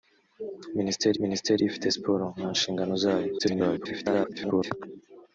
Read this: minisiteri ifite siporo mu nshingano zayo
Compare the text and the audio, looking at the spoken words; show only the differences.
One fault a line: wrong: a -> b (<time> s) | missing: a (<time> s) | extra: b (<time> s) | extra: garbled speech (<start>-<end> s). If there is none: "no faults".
extra: minisiteri (1.2 s)
extra: garbled speech (3.4-4.7 s)